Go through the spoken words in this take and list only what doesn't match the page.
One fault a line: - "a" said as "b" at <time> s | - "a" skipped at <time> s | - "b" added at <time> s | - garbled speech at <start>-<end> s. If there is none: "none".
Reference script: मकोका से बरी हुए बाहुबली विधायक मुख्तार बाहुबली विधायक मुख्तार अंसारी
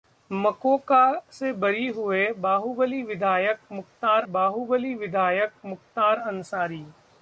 none